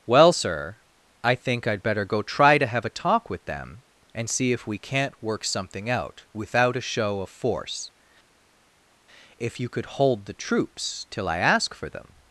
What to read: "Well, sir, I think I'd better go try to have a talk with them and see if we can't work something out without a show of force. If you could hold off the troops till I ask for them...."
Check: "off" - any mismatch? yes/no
yes